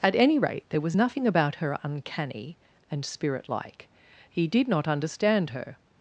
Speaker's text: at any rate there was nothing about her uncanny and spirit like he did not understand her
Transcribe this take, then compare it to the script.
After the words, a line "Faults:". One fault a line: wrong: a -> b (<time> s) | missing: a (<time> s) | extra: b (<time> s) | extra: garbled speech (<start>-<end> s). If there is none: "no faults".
at any rate there was nothing about her uncanny and spirit like he did not understand her
Faults:
no faults